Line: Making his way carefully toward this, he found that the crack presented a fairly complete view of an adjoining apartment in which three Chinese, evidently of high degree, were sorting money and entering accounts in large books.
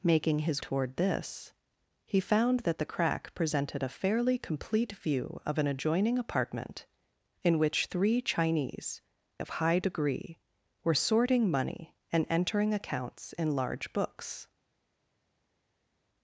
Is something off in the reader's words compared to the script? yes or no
yes